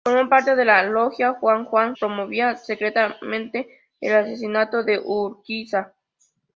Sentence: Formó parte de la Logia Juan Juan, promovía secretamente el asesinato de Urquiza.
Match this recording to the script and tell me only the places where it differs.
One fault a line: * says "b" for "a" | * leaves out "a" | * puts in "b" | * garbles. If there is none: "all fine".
all fine